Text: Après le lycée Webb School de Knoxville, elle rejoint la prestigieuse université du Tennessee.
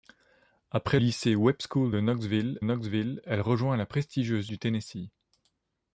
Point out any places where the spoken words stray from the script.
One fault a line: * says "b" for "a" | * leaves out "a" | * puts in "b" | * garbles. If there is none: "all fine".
* leaves out "le"
* puts in "Knoxville"
* leaves out "université"